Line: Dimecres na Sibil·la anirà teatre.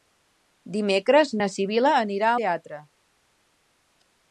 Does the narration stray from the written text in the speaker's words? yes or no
no